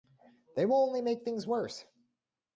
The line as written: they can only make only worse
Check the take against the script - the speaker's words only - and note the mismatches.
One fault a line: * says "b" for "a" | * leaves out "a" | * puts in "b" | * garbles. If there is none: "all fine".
* says "will" for "can"
* says "things" for "only"